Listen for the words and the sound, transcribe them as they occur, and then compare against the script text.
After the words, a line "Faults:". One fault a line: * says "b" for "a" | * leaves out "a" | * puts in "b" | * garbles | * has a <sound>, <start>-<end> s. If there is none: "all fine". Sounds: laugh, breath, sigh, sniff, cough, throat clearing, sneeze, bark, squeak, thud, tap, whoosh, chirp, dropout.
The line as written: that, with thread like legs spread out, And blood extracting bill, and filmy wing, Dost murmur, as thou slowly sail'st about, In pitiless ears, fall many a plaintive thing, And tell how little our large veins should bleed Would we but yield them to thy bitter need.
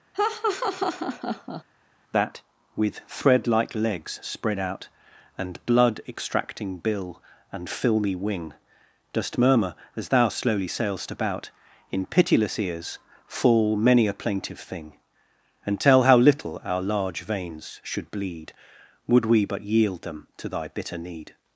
that, with thread like legs spread out, And blood extracting bill, and filmy wing, Dost murmur, as thou slowly sail'st about, In pitiless ears, fall many a plaintive thing, And tell how little our large veins should bleed Would we but yield them to thy bitter need.
Faults:
* has a laugh, 0.1-1.6 s